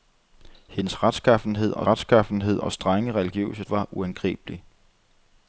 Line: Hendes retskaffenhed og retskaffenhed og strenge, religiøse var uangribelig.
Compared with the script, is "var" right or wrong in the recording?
right